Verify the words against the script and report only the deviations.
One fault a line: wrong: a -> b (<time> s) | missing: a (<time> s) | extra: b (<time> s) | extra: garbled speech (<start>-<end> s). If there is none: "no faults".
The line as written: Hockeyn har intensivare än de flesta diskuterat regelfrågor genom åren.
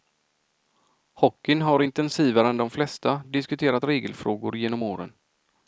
no faults